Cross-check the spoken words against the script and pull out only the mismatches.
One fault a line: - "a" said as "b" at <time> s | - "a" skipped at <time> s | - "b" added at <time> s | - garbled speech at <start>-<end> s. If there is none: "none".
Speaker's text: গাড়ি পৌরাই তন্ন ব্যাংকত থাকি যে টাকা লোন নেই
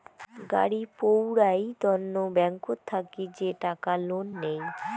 none